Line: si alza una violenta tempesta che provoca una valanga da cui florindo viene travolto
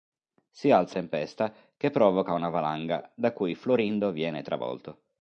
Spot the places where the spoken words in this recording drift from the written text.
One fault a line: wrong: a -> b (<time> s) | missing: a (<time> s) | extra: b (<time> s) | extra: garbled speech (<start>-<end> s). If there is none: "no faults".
missing: una violenta (1.0 s)